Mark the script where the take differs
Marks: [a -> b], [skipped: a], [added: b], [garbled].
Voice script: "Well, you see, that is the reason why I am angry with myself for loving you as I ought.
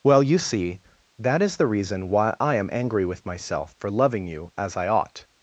"Well, you see, that is the reason why I am angry with myself for loving you as I ought.